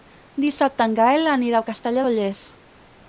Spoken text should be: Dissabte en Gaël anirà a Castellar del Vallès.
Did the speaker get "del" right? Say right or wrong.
wrong